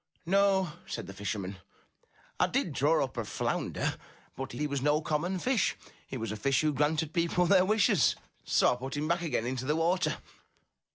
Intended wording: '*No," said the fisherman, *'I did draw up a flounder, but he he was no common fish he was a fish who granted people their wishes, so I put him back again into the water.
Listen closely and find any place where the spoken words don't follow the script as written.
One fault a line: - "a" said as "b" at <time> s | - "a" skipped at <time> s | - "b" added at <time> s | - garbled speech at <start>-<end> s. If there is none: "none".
none